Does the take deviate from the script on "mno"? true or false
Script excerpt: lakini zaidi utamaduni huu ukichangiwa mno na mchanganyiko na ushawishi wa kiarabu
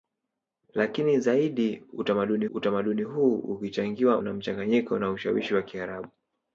true